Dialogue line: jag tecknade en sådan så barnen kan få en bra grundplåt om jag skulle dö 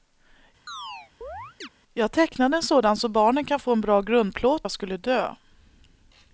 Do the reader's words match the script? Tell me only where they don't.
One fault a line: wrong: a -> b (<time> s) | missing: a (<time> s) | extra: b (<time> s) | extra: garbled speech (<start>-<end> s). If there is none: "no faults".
missing: om (4.7 s)